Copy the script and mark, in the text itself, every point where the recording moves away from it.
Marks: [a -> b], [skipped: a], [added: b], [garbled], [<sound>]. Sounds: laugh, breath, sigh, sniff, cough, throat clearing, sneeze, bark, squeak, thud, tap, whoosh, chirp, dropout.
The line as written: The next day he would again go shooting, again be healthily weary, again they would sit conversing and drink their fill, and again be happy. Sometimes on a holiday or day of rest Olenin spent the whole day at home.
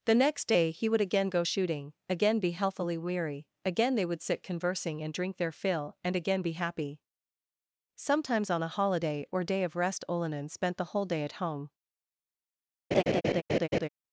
The next day he would again go shooting, again be healthily weary, again they would sit conversing and drink their fill, and again be happy. Sometimes on a holiday or day of rest Olenin spent the whole day at home. [laugh]